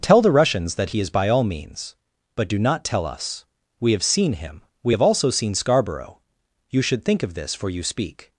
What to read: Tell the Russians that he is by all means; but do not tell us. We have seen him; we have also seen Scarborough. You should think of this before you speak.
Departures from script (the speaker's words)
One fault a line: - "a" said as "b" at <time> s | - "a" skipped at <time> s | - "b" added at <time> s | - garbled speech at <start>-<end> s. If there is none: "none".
- "before" said as "for" at 7.5 s